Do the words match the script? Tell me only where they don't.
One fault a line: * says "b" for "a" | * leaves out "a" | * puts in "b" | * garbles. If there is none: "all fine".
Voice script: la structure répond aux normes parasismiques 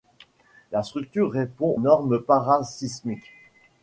* leaves out "aux"